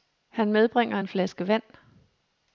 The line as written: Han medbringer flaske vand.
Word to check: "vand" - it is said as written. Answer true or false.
true